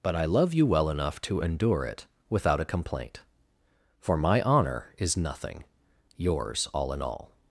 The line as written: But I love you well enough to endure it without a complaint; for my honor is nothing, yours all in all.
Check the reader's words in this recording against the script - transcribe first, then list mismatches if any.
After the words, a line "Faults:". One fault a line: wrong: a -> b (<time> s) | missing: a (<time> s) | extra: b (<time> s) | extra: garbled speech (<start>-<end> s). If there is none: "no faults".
But I love you well enough to endure it without a complaint; for my honor is nothing, yours all in all.
Faults:
no faults